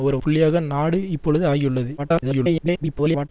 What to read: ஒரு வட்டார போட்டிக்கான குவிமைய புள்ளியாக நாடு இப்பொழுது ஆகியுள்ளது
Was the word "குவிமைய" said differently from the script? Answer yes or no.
yes